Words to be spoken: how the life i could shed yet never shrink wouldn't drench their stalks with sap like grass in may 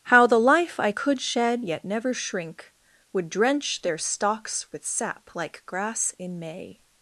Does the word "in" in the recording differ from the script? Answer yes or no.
no